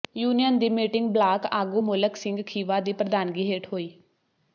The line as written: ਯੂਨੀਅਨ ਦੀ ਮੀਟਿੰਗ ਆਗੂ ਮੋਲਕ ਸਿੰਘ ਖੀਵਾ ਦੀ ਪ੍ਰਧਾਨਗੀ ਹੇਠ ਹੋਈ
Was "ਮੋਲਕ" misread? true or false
false